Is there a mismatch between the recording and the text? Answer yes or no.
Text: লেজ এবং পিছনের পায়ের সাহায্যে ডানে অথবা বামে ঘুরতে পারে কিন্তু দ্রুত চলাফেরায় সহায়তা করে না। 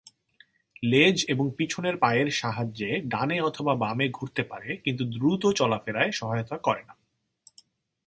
no